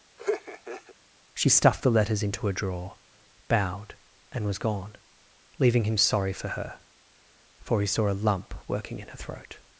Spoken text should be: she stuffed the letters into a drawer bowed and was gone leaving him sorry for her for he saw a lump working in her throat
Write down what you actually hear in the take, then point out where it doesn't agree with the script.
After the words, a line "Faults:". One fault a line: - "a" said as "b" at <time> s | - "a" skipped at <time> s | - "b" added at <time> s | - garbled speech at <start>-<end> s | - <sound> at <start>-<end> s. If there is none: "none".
she stuffed the letters into a drawer bowed and was gone leaving him sorry for her for he saw a lump working in her throat
Faults:
- laugh at 0.2-0.9 s